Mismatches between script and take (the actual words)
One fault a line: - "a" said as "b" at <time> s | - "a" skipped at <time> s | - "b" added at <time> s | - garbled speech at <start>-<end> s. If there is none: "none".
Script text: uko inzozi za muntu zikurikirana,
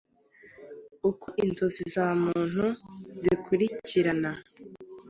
none